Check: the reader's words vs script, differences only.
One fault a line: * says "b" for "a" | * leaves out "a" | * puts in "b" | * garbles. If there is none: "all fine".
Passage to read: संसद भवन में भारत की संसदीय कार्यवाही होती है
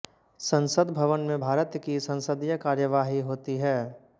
all fine